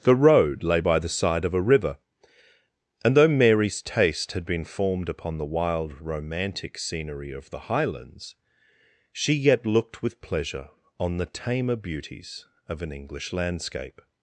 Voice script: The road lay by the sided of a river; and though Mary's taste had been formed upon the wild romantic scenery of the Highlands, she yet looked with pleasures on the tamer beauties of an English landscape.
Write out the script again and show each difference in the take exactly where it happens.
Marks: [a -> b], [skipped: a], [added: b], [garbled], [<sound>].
The road lay by the [sided -> side] of a river; and though Mary's taste had been formed upon the wild romantic scenery of the Highlands, she yet looked with [pleasures -> pleasure] on the tamer beauties of an English landscape.